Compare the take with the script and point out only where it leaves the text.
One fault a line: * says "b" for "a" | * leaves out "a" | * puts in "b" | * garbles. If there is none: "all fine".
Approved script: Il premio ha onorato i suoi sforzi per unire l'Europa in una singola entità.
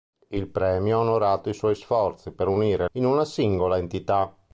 * leaves out "l'Europa"